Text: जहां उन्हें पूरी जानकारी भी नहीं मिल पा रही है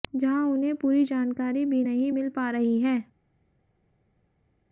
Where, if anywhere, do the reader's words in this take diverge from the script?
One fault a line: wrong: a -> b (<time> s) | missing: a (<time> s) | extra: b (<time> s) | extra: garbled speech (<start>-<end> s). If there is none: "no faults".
no faults